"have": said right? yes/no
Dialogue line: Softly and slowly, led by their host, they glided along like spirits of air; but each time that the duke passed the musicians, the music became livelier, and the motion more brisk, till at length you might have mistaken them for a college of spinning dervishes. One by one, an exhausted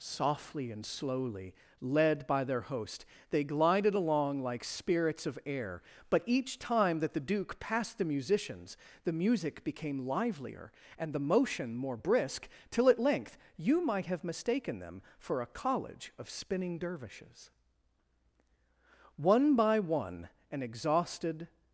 yes